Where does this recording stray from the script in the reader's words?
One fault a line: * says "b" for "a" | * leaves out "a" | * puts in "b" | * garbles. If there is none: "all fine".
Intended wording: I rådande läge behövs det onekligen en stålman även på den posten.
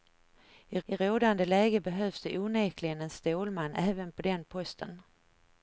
* puts in "I"